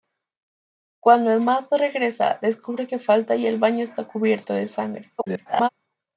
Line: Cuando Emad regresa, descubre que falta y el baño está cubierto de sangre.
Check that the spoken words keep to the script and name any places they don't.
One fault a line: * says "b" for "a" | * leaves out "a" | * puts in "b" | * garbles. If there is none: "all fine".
* garbles